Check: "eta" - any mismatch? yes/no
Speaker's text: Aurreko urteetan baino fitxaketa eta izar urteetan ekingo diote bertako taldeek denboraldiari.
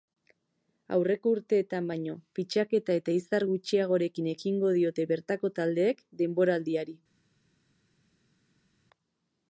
no